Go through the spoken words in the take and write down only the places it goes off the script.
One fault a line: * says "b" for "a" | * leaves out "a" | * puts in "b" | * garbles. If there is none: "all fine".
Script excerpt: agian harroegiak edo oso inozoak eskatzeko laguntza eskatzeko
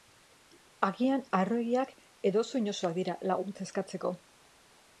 * says "dira" for "eskatzeko"